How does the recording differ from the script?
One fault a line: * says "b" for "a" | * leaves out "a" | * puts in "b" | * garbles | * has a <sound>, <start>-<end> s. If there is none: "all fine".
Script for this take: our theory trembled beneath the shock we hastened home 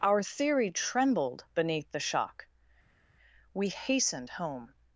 all fine